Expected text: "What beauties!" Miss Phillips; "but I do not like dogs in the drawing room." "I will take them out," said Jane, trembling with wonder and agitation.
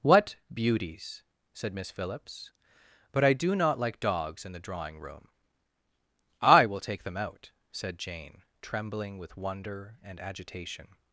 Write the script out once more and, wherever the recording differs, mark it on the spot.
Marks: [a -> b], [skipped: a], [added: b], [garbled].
"What beauties!" [added: said] Miss Phillips; "but I do not like dogs in the drawing room." "I will take them out," said Jane, trembling with wonder and agitation.